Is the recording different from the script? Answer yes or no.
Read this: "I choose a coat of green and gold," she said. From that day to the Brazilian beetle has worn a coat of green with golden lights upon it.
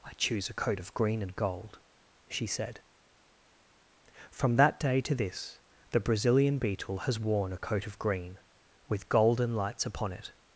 yes